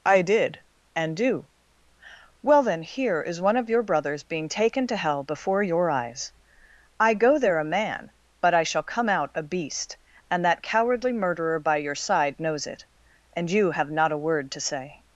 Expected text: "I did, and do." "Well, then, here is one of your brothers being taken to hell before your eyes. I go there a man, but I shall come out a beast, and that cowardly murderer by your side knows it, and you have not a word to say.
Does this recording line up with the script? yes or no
yes